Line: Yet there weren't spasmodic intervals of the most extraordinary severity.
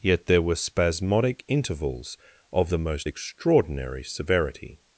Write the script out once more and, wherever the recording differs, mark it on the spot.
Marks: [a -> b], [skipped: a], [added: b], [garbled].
Yet there [weren't -> were] spasmodic intervals of the most extraordinary severity.